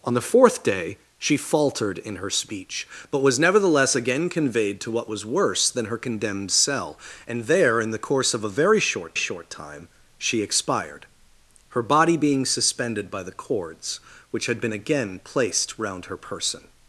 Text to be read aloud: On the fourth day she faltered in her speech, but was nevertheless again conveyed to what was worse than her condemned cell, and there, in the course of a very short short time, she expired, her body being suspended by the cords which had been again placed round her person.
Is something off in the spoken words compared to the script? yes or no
no